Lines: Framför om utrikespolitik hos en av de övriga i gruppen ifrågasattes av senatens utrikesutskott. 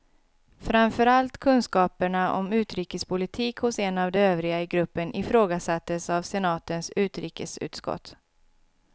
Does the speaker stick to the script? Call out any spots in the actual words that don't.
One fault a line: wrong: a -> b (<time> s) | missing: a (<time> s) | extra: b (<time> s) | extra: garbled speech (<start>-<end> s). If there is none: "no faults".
extra: allt kunskaperna (1.1 s)